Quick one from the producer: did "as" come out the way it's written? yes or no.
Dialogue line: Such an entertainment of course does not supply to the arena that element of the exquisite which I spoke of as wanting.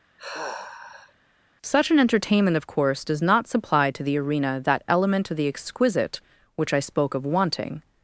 no